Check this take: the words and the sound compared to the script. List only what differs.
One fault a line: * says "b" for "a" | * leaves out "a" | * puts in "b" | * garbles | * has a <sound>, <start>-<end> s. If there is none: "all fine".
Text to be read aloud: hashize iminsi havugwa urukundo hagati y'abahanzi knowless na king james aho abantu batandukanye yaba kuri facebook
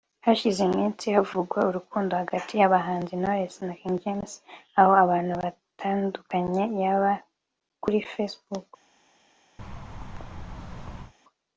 * has a thud, 9.6-11.1 s